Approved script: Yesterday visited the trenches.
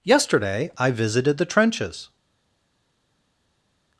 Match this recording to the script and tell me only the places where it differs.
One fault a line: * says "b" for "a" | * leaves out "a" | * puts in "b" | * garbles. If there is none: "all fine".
* puts in "I"